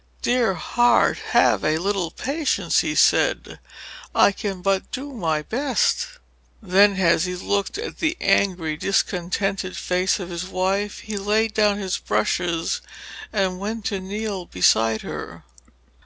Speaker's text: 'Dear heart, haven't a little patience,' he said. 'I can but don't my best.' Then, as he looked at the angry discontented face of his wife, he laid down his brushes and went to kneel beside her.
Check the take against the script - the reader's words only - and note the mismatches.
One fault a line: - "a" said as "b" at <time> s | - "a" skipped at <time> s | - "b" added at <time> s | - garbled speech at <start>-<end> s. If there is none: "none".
- "haven't" said as "have" at 1.3 s
- "don't" said as "do" at 4.9 s